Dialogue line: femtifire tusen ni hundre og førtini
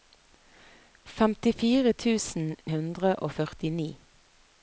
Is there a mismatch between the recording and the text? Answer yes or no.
yes